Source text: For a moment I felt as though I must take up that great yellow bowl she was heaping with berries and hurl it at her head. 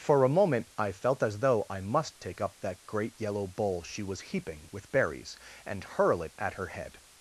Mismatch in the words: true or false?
false